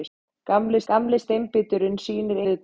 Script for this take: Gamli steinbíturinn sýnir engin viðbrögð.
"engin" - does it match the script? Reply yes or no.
no